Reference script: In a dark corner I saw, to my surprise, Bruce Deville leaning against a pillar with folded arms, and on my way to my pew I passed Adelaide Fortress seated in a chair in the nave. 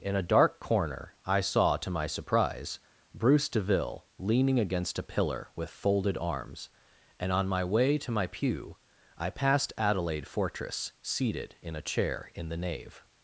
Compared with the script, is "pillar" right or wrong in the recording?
right